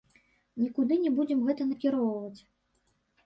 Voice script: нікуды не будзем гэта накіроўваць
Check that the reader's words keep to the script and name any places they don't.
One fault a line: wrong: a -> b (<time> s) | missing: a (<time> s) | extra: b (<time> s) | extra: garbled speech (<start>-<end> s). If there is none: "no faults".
no faults